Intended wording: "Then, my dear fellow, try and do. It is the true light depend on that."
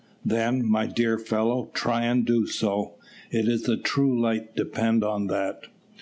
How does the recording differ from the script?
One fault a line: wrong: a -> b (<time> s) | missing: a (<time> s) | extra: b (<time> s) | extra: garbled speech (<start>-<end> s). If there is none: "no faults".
extra: so (2.5 s)